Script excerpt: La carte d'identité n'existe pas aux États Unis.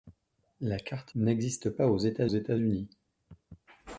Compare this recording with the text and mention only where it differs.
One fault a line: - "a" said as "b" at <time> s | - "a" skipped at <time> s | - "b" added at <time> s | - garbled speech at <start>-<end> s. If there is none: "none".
- "d'identité" skipped at 1.1 s
- "États" added at 2.3 s